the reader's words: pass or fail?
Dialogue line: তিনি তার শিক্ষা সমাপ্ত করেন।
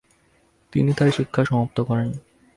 pass